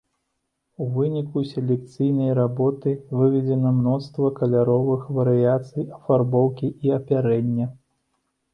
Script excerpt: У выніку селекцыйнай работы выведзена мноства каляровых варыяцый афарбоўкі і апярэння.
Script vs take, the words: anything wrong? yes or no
no